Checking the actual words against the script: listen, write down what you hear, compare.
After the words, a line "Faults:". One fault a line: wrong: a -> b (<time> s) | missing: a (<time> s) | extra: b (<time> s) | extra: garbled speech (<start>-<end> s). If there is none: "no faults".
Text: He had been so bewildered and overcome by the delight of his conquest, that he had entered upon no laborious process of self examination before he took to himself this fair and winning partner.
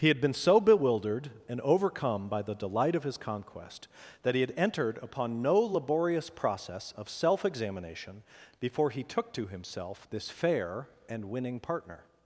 He had been so bewildered and overcome by the delight of his conquest, that he had entered upon no laborious process of self examination before he took to himself this fair and winning partner.
Faults:
no faults